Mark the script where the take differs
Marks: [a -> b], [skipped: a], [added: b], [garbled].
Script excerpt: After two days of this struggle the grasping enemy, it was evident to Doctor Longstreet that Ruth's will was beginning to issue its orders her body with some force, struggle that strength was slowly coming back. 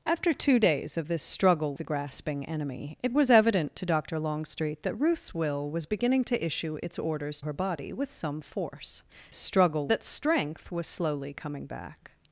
After two days of this struggle the grasping enemy, it was evident to Doctor Longstreet that Ruth's will was beginning to issue its orders her body with some force, struggle that strength was slowly coming back.